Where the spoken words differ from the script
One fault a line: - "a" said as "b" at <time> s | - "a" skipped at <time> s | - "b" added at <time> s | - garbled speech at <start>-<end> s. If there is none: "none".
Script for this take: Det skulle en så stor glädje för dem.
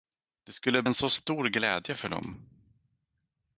none